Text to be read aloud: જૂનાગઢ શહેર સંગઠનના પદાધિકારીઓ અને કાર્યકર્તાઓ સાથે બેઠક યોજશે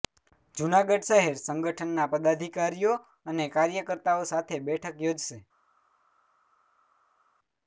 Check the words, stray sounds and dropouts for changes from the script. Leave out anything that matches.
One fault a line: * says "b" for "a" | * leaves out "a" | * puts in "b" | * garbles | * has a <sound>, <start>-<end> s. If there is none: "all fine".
all fine